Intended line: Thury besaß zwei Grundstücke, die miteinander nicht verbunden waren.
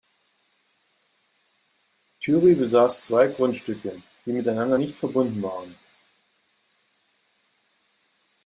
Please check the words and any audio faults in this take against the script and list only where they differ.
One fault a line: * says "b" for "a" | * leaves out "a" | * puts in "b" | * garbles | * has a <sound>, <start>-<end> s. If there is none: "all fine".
all fine